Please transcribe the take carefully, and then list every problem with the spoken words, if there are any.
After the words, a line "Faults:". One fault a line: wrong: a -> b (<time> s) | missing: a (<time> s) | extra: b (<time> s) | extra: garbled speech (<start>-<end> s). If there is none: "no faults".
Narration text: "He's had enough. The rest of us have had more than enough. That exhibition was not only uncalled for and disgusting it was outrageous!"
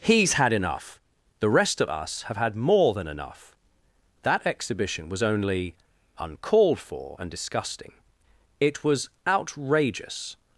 "He's had enough. The rest of us have had more than enough. That exhibition was only uncalled for and disgusting it was outrageous!"
Faults:
missing: not (5.2 s)